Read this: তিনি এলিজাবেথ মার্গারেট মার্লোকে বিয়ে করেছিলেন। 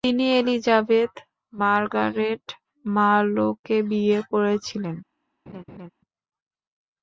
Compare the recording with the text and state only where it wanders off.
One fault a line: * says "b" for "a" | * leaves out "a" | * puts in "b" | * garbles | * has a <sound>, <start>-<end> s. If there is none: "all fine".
* has a laugh, 5.5-5.9 s